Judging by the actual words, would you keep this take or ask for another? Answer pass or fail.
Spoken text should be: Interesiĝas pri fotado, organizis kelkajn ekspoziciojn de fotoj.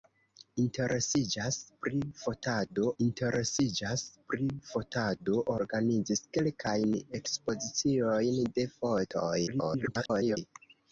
fail